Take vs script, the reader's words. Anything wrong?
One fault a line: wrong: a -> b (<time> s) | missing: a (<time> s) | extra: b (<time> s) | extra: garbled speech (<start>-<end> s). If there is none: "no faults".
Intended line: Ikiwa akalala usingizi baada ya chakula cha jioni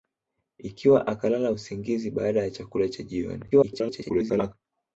extra: garbled speech (3.5-4.5 s)